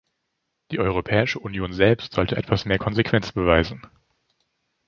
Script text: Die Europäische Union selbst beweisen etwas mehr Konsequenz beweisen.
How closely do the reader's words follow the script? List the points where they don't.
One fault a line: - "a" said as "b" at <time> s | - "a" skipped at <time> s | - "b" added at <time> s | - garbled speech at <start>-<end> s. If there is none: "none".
- "beweisen" said as "sollte" at 2.1 s